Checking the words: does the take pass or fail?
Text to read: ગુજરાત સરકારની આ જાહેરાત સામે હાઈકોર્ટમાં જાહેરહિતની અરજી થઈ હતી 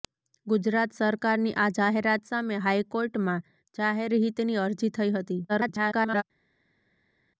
fail